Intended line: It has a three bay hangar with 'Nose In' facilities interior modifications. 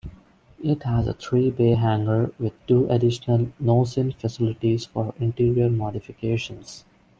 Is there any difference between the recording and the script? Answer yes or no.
yes